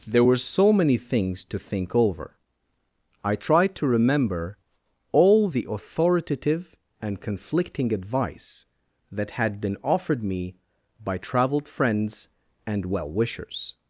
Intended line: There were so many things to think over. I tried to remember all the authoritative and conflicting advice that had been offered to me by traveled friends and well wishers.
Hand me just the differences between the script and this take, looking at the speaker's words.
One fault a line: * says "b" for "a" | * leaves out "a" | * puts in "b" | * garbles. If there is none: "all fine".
* leaves out "to"